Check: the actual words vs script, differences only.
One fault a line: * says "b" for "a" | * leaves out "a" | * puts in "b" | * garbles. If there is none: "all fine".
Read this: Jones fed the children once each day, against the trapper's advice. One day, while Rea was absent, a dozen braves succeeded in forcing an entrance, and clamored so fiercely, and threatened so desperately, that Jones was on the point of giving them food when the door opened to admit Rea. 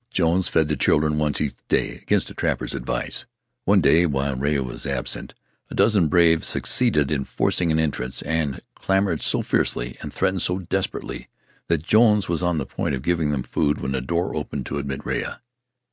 all fine